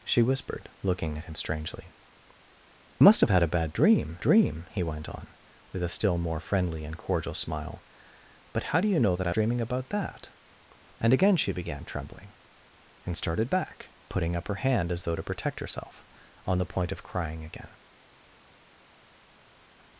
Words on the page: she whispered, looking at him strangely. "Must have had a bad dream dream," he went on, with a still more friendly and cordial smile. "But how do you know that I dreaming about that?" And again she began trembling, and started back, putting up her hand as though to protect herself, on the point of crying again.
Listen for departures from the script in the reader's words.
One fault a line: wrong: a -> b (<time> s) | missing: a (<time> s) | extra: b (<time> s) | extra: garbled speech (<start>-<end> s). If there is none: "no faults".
no faults